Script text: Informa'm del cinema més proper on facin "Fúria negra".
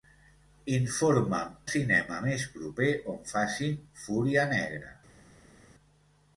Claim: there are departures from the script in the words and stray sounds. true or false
true